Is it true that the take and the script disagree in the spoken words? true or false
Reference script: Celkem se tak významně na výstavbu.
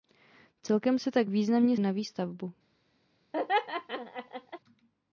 false